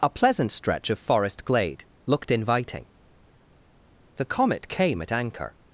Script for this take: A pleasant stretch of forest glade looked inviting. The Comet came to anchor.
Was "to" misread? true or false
true